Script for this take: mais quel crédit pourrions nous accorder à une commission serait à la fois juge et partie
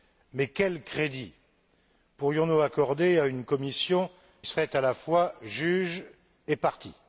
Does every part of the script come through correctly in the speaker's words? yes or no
yes